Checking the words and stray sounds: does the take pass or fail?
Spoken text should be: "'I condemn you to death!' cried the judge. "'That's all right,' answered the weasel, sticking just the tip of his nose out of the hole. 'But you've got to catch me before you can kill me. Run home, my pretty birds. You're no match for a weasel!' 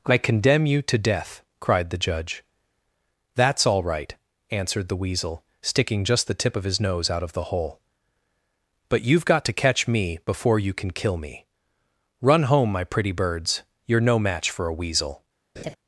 fail